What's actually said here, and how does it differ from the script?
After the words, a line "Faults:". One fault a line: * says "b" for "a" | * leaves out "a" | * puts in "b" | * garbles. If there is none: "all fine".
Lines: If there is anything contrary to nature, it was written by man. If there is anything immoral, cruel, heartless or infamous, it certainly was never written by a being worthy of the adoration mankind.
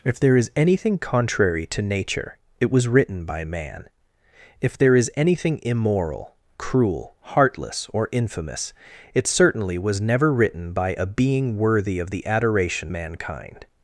If there is anything contrary to nature, it was written by man. If there is anything immoral, cruel, heartless or infamous, it certainly was never written by a being worthy of the adoration mankind.
Faults:
all fine